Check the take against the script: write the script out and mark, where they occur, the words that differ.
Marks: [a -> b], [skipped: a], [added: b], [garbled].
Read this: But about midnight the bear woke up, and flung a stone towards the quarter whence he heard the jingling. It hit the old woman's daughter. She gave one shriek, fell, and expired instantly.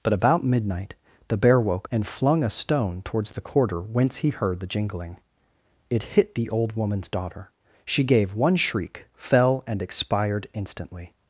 But about midnight the bear woke [skipped: up,] and flung a stone towards the quarter whence he heard the jingling. It hit the old woman's daughter. She gave one shriek, fell, and expired instantly.